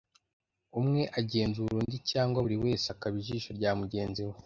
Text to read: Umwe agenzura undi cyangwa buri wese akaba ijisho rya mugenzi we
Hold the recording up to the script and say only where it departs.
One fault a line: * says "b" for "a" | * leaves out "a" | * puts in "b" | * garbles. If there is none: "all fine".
all fine